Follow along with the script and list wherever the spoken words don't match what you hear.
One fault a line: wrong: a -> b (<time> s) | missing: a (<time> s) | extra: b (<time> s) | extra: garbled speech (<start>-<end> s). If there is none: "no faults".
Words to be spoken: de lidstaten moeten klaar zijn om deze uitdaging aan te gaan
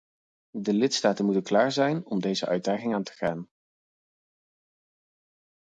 no faults